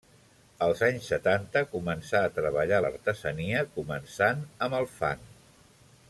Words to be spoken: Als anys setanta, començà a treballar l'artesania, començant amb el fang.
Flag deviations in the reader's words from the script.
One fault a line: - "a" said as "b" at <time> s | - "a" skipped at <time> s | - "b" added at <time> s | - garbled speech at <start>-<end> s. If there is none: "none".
none